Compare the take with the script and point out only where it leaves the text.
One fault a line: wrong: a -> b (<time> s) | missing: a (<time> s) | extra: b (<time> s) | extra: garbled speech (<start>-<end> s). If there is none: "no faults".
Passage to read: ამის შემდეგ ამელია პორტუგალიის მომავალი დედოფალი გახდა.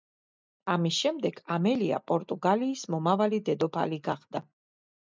no faults